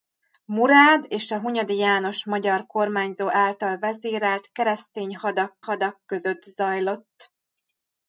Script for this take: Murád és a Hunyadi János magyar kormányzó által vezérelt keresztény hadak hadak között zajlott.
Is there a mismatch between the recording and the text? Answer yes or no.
no